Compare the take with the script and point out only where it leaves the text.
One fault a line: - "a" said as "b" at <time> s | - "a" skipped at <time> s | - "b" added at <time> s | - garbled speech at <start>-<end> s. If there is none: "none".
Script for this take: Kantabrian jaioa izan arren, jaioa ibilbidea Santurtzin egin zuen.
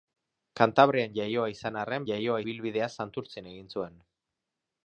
none